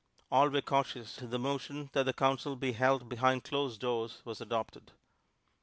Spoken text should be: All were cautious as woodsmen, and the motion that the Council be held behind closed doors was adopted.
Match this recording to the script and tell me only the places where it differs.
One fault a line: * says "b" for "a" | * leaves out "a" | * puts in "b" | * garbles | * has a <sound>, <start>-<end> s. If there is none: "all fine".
* leaves out "as woodsmen and"